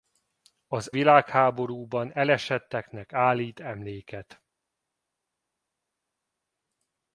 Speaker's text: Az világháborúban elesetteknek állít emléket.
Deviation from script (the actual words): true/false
false